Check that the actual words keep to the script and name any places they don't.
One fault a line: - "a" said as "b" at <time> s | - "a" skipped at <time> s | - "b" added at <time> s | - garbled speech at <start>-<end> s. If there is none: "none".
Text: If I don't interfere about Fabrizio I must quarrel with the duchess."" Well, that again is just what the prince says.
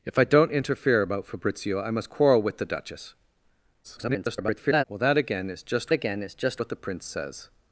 - garbled speech at 3.8-4.8 s
- "again is just" added at 5.9 s